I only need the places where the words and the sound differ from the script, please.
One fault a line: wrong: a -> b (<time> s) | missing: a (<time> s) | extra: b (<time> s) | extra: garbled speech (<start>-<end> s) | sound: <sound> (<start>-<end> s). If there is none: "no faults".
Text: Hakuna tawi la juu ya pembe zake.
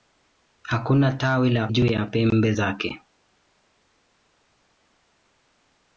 no faults